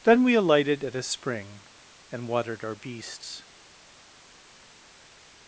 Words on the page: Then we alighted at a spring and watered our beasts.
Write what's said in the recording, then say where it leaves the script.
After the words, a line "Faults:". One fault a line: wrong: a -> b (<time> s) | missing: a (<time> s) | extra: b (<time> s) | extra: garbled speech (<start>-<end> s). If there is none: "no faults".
Then we alighted at a spring and watered our beasts.
Faults:
no faults